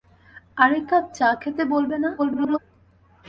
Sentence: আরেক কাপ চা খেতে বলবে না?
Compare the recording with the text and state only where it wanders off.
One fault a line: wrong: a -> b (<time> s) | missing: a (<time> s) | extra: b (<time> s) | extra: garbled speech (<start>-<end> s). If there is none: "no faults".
extra: garbled speech (2.2-2.6 s)